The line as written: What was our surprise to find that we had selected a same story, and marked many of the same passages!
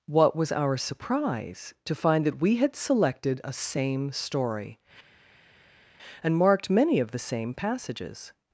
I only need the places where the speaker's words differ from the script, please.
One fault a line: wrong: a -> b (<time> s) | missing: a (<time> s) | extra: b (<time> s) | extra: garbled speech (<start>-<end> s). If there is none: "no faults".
no faults